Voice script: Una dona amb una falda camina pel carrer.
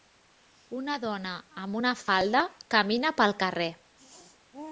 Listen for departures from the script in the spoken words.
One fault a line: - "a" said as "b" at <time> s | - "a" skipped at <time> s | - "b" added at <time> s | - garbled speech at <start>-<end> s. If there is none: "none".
none